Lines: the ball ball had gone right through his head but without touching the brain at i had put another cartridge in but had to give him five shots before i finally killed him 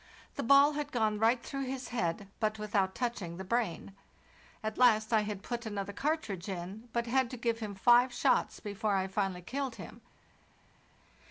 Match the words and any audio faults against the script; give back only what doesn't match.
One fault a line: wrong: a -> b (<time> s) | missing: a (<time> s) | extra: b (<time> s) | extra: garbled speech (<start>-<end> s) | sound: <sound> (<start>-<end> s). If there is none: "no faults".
missing: ball (0.7 s)
extra: last (4.8 s)